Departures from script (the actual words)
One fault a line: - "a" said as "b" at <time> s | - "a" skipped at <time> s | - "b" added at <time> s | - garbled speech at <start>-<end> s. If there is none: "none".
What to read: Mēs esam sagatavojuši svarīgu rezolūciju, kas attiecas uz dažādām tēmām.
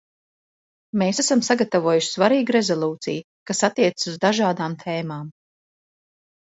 none